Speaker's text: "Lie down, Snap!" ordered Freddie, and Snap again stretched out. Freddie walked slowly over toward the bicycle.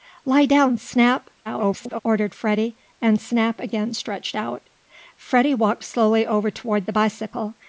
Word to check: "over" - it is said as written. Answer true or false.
true